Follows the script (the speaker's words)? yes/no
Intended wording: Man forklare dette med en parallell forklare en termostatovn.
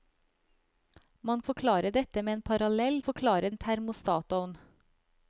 yes